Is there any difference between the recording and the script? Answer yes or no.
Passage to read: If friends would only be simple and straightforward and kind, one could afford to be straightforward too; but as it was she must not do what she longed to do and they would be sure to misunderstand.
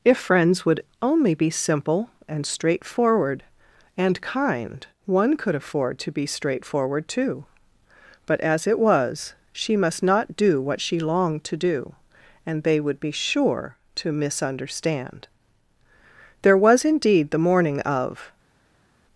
yes